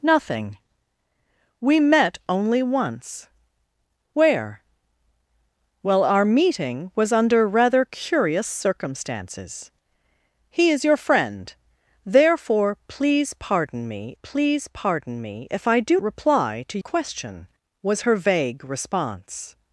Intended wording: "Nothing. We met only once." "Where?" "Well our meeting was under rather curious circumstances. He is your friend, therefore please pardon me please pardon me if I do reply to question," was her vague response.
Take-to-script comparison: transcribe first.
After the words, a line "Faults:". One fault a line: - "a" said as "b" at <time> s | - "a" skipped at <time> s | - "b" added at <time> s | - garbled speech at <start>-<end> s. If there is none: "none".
"Nothing. We met only once." "Where?" "Well our meeting was under rather curious circumstances. He is your friend, therefore please pardon me please pardon me if I do reply to question," was her vague response.
Faults:
none